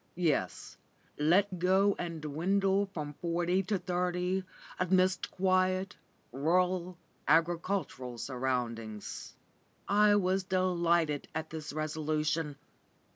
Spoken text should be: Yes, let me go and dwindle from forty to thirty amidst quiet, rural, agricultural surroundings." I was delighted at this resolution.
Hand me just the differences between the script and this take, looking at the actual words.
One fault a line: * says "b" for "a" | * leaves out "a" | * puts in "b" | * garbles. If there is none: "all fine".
* leaves out "me"